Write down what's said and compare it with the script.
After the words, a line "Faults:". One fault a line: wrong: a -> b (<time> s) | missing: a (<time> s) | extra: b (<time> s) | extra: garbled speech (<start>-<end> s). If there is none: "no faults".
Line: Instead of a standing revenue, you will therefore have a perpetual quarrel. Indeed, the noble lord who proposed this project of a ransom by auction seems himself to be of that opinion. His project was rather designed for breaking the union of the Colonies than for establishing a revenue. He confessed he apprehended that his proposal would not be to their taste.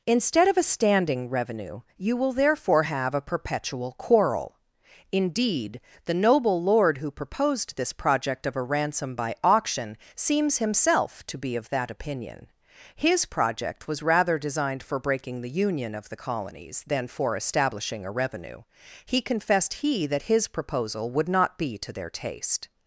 Instead of a standing revenue, you will therefore have a perpetual quarrel. Indeed, the noble lord who proposed this project of a ransom by auction seems himself to be of that opinion. His project was rather designed for breaking the union of the Colonies than for establishing a revenue. He confessed he that his proposal would not be to their taste.
Faults:
missing: apprehended (20.1 s)